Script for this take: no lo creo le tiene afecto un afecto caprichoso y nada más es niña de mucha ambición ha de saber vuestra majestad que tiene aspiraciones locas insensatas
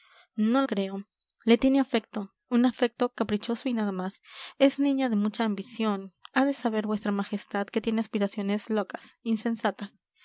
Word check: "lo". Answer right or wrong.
wrong